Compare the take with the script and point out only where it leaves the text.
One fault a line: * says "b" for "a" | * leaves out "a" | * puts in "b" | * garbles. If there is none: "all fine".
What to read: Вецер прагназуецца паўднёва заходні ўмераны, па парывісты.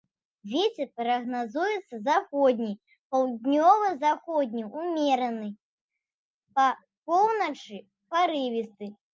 * puts in "заходні"
* puts in "поўначы"